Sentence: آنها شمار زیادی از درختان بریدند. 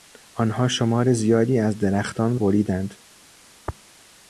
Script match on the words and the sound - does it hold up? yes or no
yes